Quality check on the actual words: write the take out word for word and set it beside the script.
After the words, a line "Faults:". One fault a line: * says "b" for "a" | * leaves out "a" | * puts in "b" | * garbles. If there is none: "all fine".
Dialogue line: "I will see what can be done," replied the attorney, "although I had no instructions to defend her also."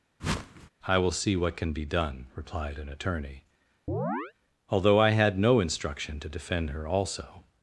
"I will see what can be done," replied an attorney, "although I had no instruction to defend her also."
Faults:
* says "an" for "the"
* says "instruction" for "instructions"